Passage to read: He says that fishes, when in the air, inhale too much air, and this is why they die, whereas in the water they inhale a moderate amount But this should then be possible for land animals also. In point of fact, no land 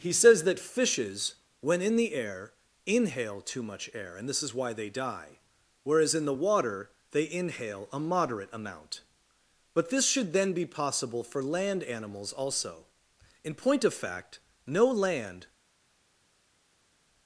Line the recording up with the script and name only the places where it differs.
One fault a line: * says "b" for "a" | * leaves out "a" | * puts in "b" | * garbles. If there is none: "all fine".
all fine